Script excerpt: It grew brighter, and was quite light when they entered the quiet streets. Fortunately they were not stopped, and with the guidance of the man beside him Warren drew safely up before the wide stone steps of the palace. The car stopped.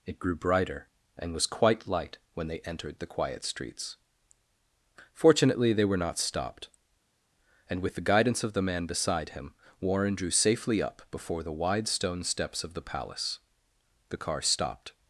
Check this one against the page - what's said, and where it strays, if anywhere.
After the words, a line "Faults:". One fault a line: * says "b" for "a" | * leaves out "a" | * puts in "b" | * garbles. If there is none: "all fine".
It grew brighter, and was quite light when they entered the quiet streets. Fortunately they were not stopped, and with the guidance of the man beside him Warren drew safely up before the wide stone steps of the palace. The car stopped.
Faults:
all fine